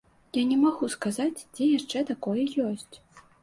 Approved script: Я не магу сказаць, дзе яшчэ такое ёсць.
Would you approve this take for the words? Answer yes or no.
yes